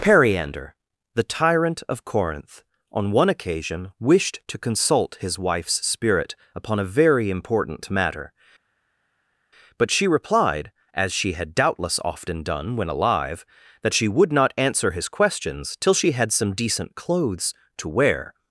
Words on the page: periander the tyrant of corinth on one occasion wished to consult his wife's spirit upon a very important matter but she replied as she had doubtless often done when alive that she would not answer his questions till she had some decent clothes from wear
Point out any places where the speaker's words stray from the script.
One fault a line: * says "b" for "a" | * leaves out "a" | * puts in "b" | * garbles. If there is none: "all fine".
* says "to" for "from"